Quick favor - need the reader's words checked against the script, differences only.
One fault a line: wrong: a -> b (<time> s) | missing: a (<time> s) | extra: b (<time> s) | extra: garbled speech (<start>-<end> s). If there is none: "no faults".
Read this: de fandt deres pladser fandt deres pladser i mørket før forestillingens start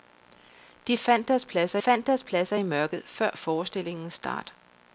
no faults